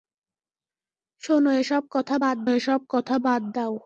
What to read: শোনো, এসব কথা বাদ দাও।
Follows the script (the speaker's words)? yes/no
no